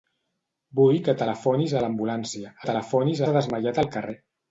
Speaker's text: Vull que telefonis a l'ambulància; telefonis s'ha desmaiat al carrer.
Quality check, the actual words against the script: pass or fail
pass